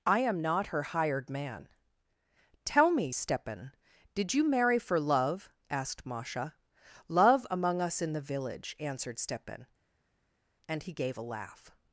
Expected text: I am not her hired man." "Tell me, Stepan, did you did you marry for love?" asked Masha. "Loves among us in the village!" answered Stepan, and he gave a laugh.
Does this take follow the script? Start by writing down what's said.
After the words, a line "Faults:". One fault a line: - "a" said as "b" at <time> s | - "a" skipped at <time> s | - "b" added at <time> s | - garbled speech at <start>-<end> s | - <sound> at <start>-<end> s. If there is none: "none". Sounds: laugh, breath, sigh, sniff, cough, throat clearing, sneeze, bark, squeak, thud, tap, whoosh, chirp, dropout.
I am not her hired man." "Tell me, Stepan, did you marry for love?" asked Masha. "Love among us in the village!" answered Stepan, and he gave a laugh.
Faults:
- "did you" skipped at 4.5 s
- "Loves" said as "Love" at 7.1 s